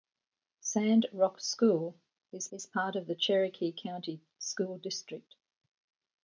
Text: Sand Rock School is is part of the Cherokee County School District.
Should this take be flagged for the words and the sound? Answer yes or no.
no